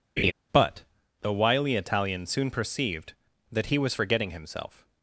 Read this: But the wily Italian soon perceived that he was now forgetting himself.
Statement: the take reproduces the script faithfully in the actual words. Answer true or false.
false